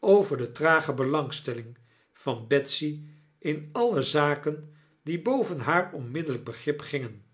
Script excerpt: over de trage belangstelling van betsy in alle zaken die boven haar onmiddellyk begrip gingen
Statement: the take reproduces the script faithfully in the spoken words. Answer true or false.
true